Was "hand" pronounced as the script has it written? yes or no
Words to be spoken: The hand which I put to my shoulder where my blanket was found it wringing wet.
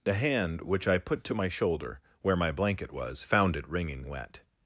yes